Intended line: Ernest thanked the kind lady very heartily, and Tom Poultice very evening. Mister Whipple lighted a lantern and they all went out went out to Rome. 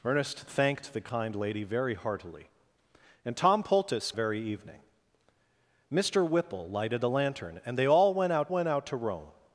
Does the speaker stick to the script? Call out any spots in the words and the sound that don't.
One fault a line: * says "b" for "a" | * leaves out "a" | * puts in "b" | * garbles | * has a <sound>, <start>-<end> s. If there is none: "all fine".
all fine